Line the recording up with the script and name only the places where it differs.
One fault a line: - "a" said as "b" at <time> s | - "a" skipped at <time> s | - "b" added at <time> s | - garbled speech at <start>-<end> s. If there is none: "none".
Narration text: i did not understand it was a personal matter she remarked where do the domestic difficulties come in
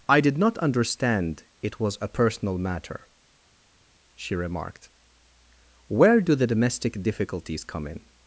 none